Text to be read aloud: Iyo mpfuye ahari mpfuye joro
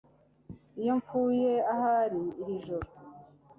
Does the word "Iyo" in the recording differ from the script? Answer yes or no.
no